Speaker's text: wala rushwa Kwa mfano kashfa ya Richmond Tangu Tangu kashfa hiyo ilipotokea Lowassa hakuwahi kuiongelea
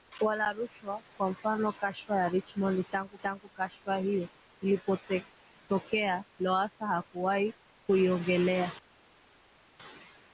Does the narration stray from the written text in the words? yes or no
no